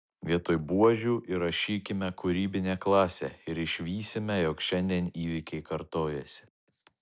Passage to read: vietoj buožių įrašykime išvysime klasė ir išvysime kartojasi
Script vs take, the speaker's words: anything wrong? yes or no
yes